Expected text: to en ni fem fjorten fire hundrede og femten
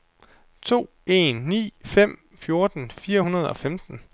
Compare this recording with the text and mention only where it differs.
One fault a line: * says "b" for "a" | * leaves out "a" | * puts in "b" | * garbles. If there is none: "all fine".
all fine